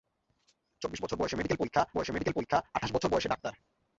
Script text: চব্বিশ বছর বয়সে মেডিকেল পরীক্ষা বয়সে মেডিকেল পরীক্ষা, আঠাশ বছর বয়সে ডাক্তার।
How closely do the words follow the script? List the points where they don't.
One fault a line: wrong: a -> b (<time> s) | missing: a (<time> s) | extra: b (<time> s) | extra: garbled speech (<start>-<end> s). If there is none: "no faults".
no faults